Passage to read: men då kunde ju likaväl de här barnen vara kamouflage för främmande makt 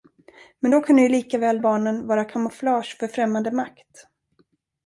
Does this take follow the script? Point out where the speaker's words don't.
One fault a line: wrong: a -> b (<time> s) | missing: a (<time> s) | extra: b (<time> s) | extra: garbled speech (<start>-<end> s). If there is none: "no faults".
missing: de här (1.6 s)